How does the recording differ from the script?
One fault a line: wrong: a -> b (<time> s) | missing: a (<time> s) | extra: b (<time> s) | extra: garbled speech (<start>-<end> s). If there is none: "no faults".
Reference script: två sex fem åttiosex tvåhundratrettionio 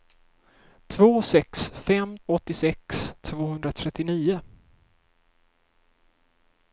no faults